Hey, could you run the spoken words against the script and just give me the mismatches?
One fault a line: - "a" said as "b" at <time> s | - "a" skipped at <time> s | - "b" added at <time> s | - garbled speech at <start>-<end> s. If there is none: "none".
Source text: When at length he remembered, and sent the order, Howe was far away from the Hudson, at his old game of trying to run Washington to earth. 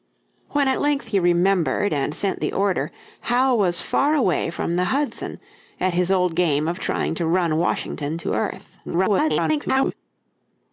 - garbled speech at 8.8-9.9 s